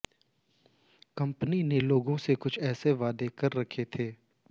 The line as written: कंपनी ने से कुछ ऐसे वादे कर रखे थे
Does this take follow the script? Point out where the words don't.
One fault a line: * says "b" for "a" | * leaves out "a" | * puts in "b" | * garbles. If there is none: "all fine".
* puts in "लोगों"